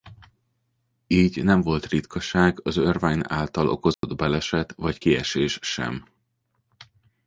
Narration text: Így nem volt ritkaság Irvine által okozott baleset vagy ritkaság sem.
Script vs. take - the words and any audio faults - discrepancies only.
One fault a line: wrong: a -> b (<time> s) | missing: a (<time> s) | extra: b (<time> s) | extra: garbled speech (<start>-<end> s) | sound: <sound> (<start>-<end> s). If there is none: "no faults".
extra: az (2.6 s)
sound: dropout (3.9-4.0 s)
wrong: ritkaság -> kiesés (5.0 s)